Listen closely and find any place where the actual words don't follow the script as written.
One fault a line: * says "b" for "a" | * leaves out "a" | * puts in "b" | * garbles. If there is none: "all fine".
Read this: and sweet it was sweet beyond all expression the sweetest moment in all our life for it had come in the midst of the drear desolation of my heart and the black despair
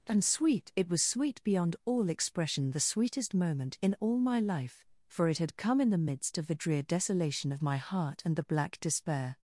* says "my" for "our"